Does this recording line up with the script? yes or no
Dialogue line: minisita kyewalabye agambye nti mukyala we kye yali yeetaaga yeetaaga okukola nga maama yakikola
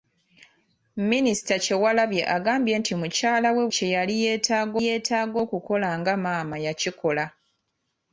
yes